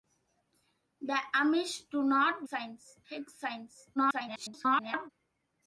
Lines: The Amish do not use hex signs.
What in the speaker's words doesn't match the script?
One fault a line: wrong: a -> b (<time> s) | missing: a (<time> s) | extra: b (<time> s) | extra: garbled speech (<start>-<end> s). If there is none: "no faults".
wrong: use -> signs (2.4 s)
extra: garbled speech (4.0-5.1 s)